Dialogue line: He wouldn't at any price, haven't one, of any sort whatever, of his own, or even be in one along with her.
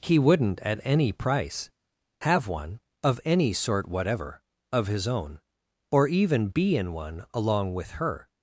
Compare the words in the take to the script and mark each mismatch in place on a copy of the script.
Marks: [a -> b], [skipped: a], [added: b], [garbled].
He wouldn't at any price, [haven't -> have] one, of any sort whatever, of his own, or even be in one along with her.